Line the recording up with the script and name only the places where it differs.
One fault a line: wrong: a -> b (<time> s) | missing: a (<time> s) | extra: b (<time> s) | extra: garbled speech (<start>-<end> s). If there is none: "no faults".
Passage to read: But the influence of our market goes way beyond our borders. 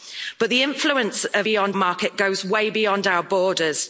wrong: our -> beyond (1.4 s)